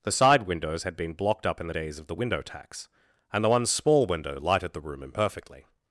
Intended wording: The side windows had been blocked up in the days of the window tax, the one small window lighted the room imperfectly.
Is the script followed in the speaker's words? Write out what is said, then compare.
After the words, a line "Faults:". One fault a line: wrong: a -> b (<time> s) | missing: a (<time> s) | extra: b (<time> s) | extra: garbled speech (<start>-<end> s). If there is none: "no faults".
The side windows had been blocked up in the days of the window tax, and the one small window lighted the room imperfectly.
Faults:
extra: and (3.3 s)